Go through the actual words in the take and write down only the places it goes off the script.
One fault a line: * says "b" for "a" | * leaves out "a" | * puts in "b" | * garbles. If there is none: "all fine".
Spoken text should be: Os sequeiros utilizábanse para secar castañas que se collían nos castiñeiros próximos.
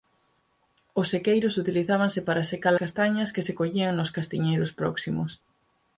all fine